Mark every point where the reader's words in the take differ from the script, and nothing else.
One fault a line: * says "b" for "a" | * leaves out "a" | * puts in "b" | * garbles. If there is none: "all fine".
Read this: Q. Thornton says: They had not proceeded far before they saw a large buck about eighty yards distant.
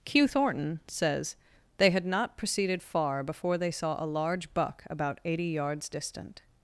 all fine